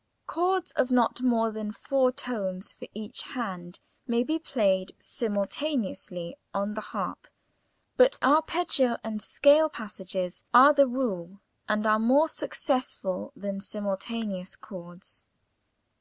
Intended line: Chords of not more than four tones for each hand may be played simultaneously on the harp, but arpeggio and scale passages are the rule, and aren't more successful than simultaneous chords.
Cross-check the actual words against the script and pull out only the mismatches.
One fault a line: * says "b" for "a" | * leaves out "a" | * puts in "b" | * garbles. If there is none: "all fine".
* says "are" for "aren't"